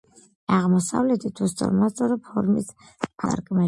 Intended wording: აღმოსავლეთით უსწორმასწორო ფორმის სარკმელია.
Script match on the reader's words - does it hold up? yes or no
yes